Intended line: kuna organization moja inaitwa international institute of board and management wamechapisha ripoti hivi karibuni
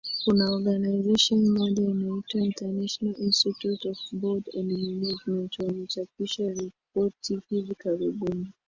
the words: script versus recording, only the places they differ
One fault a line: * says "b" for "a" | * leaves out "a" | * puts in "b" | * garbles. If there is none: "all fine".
all fine